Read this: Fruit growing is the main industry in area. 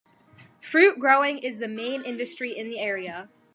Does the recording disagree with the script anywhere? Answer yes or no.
yes